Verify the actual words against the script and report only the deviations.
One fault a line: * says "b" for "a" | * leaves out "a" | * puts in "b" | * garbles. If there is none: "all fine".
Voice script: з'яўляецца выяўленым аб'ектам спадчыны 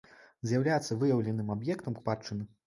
all fine